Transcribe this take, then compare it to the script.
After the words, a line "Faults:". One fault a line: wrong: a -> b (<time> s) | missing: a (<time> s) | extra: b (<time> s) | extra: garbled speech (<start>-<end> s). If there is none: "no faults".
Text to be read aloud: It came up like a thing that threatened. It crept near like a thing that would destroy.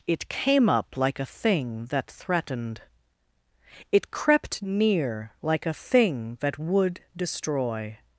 It came up like a thing that threatened. It crept near like a thing that would destroy.
Faults:
no faults